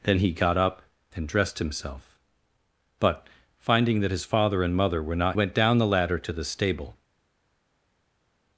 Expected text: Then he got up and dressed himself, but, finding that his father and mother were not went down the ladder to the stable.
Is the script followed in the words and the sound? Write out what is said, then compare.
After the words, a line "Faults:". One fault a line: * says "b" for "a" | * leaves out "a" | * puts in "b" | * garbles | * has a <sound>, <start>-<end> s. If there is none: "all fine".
Then he got up and dressed himself, but, finding that his father and mother were not went down the ladder to the stable.
Faults:
all fine